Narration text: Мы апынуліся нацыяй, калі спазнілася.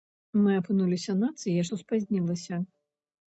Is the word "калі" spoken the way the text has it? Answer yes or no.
no